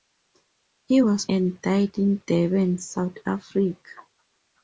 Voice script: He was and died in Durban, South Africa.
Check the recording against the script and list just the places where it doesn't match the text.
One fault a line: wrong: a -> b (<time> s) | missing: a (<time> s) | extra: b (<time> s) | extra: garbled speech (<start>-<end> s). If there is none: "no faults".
no faults